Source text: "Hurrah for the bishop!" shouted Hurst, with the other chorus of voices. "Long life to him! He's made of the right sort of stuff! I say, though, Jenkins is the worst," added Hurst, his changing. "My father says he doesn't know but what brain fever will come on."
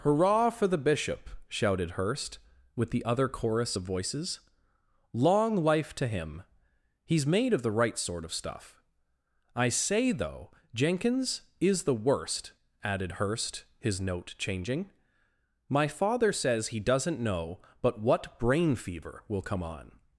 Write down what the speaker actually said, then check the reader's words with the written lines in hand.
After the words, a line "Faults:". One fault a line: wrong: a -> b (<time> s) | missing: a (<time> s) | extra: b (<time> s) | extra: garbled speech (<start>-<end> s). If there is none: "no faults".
"Hurrah for the bishop!" shouted Hurst, with the other chorus of voices. "Long life to him! He's made of the right sort of stuff! I say, though, Jenkins is the worst," added Hurst, his note changing. "My father says he doesn't know but what brain fever will come on."
Faults:
extra: note (14.0 s)